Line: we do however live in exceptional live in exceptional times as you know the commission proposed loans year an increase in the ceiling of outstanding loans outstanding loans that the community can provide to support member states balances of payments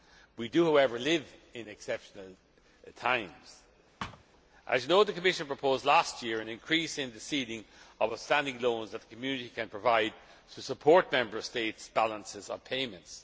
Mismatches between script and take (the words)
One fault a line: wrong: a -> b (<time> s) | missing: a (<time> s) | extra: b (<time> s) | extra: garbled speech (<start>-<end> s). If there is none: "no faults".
missing: live in exceptional (2.2 s)
wrong: loans -> last (5.8 s)
missing: outstanding loans (8.9 s)